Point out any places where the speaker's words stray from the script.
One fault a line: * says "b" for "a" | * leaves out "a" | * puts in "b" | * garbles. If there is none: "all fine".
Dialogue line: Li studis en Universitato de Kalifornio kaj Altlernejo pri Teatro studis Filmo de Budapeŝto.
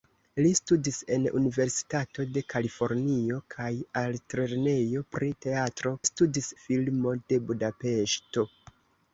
all fine